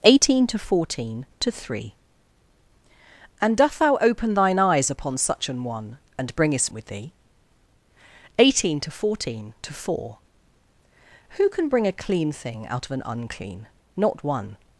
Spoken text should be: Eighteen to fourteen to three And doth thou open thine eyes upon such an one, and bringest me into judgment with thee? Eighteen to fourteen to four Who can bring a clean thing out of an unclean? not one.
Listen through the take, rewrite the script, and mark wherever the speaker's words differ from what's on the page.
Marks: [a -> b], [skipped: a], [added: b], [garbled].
Eighteen to fourteen to three And doth thou open thine eyes upon such an one, and bringest [skipped: me into judgment] with thee? Eighteen to fourteen to four Who can bring a clean thing out of an unclean? not one.